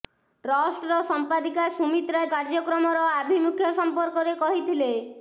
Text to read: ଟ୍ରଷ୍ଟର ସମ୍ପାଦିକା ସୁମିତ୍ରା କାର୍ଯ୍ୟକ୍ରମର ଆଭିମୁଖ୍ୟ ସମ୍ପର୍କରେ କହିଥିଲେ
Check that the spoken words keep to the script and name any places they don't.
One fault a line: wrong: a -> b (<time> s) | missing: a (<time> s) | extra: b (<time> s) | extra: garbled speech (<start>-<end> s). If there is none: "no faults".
no faults